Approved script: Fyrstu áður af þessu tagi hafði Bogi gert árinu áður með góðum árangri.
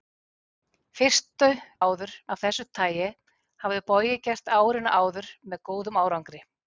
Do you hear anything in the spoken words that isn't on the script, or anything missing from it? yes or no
no